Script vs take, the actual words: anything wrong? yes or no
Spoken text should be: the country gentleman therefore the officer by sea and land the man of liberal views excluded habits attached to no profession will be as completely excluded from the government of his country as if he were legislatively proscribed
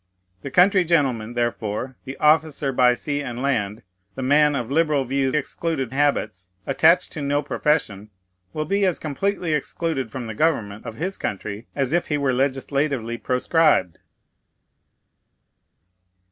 no